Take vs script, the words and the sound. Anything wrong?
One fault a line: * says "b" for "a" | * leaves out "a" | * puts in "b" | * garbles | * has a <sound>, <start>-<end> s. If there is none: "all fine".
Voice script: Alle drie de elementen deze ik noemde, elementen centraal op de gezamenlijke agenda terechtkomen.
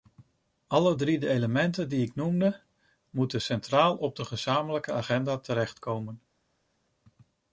* says "die" for "deze"
* says "moeten" for "elementen"